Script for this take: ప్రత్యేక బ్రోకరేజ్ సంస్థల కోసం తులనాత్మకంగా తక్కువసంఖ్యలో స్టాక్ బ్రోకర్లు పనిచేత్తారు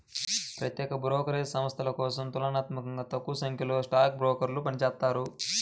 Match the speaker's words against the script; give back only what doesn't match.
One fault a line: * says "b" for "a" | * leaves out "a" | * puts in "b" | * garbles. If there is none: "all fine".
all fine